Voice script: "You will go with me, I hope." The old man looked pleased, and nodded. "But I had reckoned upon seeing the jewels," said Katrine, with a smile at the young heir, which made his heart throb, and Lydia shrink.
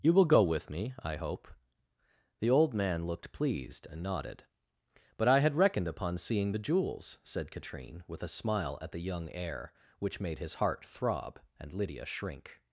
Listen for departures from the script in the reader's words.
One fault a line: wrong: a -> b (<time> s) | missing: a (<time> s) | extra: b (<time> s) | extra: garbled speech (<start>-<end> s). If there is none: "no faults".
no faults